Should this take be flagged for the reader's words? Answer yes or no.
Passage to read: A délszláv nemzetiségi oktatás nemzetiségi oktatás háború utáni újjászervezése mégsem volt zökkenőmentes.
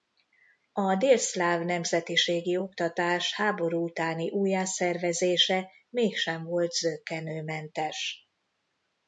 yes